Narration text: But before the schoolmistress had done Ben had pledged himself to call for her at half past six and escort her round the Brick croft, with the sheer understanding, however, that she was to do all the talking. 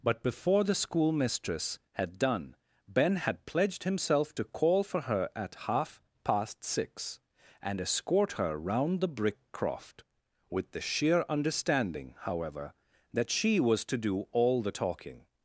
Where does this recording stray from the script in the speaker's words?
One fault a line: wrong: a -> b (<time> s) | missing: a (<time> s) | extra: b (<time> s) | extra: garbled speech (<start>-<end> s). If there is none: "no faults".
no faults